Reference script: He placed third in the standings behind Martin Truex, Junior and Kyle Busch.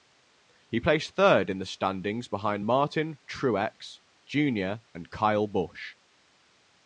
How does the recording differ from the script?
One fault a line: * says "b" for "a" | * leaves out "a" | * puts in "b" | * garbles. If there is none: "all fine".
all fine